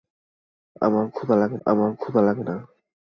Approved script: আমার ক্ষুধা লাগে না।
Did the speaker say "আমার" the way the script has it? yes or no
yes